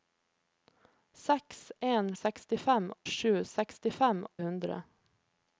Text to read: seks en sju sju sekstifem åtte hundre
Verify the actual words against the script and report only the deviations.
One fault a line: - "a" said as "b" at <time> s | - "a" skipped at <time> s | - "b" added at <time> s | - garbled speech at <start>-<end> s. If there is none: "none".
- "sju" said as "sekstifem" at 2.2 s
- "åtte" skipped at 4.3 s